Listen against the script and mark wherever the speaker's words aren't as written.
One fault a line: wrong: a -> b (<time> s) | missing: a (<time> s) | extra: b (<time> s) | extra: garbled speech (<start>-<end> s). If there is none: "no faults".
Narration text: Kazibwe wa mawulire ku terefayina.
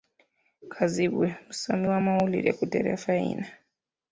extra: musomi (1.4 s)